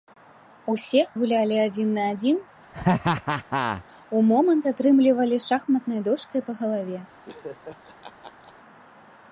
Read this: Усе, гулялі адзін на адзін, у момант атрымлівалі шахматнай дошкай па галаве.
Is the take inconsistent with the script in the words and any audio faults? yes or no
yes